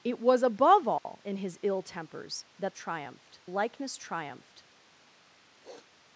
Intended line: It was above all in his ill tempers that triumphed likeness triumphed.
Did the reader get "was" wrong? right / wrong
right